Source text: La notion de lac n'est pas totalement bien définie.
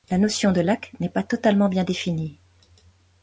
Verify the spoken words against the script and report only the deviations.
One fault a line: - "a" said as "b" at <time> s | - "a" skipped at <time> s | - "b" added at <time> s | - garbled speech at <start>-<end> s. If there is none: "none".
none